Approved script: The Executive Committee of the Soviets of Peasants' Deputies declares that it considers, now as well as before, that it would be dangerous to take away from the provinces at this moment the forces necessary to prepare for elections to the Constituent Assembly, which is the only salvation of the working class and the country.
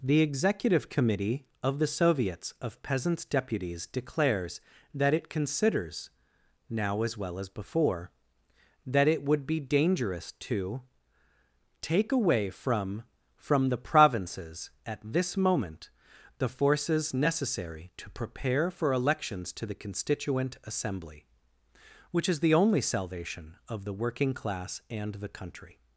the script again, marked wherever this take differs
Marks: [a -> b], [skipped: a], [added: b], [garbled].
The Executive Committee of the Soviets of Peasants' Deputies declares that it considers, now as well as before, that it would be dangerous to take away from [added: from] the provinces at this moment the forces necessary to prepare for elections to the Constituent Assembly, which is the only salvation of the working class and the country.